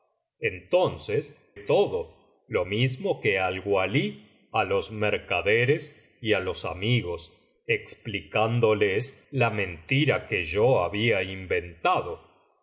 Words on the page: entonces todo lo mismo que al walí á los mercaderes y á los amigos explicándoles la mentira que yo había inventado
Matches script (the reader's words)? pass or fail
pass